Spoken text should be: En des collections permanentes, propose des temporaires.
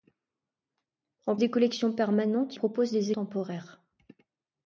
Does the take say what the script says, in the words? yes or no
yes